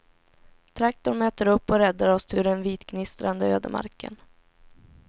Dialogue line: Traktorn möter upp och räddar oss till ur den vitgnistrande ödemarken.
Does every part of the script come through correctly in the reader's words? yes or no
yes